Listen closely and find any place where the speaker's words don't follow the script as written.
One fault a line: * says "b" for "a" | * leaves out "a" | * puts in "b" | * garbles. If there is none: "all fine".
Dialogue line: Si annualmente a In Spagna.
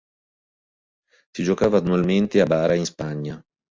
* puts in "giocava"
* puts in "Bara"